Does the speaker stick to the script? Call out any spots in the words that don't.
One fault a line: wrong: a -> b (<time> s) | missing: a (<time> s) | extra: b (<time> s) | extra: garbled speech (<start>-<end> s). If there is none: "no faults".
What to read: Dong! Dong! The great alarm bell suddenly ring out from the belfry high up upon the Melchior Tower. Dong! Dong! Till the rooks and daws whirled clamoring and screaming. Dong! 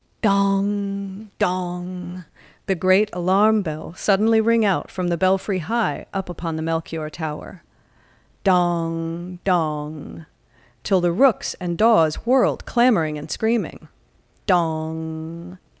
no faults